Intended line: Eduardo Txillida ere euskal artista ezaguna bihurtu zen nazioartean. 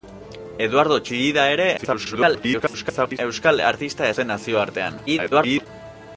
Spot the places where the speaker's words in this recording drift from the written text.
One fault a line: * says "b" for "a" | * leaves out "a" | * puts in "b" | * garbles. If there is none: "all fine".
* garbles
* leaves out "ezaguna bihurtu"
* garbles